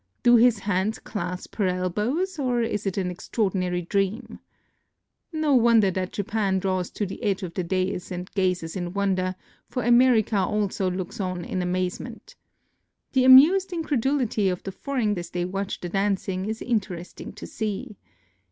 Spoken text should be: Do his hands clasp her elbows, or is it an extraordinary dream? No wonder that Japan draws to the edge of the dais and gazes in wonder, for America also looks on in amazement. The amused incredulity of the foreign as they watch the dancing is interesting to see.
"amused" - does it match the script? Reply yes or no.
yes